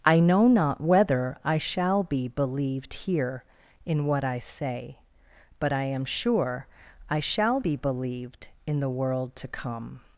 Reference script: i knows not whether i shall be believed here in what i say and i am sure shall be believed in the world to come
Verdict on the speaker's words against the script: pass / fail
fail